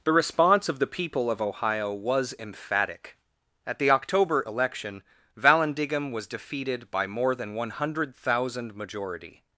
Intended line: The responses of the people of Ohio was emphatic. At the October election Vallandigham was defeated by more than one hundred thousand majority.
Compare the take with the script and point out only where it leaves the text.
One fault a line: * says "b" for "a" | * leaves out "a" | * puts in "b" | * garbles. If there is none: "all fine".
* says "response" for "responses"